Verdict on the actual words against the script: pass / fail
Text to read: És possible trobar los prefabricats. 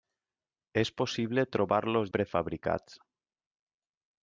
pass